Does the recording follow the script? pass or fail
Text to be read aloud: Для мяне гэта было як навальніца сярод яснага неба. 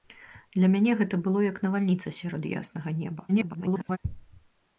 fail